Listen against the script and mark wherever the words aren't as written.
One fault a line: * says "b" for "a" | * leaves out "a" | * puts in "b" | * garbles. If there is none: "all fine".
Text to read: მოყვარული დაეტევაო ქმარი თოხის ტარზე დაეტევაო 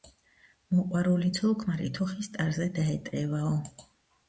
* says "ცოლ" for "დაეტევაო"